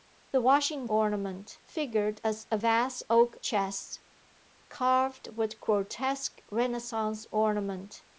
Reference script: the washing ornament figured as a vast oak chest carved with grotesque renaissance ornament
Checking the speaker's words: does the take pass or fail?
pass